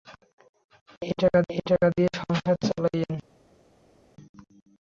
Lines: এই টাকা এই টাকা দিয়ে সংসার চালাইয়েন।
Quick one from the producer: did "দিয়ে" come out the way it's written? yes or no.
yes